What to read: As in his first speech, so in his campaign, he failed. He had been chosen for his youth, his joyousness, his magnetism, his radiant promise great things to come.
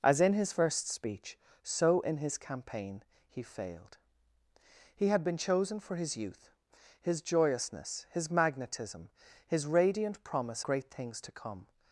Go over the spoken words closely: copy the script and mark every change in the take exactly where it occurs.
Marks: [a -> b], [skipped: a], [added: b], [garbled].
As in his first speech, so in his campaign, he failed. He had been chosen for his youth, his joyousness, his magnetism, his radiant promise great things to come.